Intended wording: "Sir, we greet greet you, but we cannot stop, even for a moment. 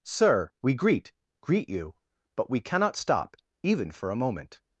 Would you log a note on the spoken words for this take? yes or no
no